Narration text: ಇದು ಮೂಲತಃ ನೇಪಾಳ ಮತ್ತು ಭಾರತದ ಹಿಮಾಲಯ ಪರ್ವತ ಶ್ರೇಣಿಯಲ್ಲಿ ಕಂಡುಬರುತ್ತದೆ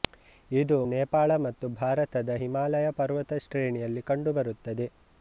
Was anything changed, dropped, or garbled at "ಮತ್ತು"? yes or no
no